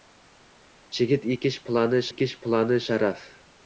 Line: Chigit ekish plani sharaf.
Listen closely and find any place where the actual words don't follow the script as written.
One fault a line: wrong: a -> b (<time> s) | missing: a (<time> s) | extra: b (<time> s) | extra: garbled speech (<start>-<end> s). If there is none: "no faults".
extra: ekish plani (2.1 s)